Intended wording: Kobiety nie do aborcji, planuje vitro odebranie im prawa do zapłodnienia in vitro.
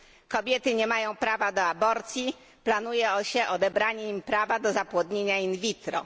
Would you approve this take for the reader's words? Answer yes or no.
no